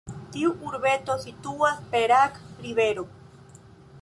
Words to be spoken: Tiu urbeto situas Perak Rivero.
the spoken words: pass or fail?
pass